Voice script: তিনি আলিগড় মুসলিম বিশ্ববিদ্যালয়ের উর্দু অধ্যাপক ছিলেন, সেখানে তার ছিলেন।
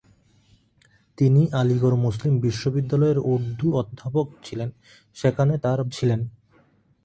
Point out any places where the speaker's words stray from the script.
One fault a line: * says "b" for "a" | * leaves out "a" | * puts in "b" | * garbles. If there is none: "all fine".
all fine